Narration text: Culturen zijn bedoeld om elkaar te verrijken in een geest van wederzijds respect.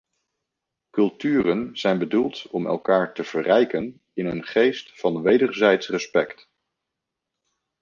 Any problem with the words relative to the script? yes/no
no